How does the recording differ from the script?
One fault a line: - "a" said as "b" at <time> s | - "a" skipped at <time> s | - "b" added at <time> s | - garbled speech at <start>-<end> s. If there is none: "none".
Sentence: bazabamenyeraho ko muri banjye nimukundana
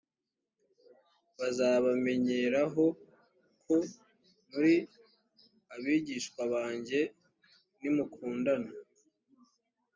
- "abigishwa" added at 5.7 s